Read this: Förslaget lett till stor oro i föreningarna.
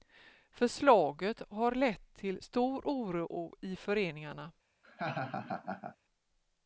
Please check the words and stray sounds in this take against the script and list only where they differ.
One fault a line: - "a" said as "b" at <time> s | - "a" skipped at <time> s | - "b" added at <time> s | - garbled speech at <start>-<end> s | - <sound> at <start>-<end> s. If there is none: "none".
- "har" added at 1.5 s
- laugh at 4.8-6.0 s